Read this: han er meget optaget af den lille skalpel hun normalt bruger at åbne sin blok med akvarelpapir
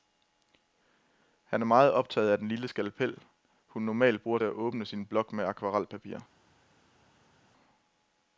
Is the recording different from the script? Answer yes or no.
no